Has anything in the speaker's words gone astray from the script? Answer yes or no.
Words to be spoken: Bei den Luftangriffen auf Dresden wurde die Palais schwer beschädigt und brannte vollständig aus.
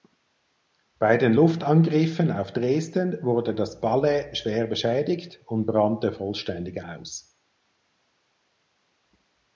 yes